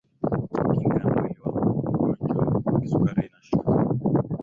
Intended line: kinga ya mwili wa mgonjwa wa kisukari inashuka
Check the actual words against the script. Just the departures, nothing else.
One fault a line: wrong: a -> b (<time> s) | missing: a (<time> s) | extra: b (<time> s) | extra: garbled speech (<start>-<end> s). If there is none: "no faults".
no faults